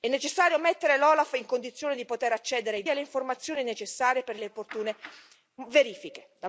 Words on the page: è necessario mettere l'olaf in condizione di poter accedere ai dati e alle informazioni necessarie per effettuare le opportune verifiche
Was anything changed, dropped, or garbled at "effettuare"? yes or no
yes